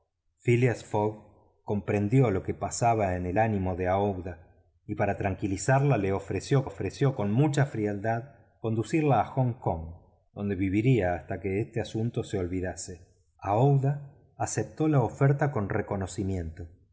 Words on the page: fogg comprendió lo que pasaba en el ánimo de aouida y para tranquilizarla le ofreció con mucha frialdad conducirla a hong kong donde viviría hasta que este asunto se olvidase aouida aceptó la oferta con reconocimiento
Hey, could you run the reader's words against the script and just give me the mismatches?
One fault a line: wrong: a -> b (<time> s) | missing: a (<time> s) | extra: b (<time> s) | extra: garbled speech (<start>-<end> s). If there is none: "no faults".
extra: ofreció (6.6 s)